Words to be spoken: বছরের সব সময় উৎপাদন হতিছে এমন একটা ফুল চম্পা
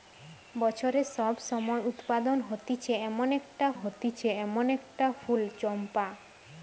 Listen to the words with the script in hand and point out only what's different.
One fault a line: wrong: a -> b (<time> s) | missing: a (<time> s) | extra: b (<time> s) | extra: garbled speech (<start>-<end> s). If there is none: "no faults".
extra: হতিছে এমন একটা (3.7 s)